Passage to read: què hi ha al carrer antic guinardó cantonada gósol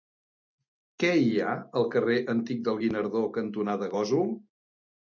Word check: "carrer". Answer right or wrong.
right